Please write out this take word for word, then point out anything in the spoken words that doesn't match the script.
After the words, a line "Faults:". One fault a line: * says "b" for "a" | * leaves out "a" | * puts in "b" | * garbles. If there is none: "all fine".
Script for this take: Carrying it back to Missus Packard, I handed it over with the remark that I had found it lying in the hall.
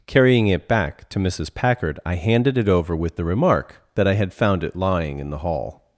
Carrying it back to Missus Packard, I handed it over with the remark that I had found it lying in the hall.
Faults:
all fine